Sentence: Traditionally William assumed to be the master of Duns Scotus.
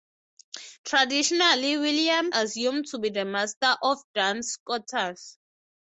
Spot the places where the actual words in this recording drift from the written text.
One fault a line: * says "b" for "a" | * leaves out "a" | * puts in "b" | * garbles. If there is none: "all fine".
all fine